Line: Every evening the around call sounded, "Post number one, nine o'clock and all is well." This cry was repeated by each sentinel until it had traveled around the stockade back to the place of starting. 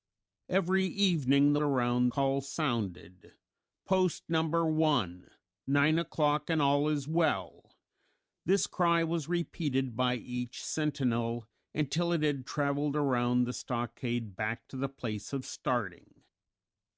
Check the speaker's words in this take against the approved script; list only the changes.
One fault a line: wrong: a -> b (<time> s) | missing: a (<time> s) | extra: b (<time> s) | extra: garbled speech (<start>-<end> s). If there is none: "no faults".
no faults